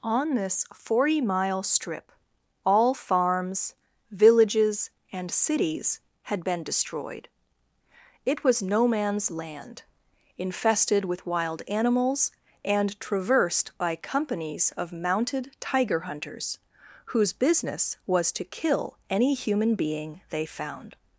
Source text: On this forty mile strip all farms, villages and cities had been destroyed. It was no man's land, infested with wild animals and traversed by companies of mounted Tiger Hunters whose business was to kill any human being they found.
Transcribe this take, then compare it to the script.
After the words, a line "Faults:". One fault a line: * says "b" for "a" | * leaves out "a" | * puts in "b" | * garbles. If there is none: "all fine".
On this forty mile strip all farms, villages and cities had been destroyed. It was no man's land, infested with wild animals and traversed by companies of mounted Tiger Hunters whose business was to kill any human being they found.
Faults:
all fine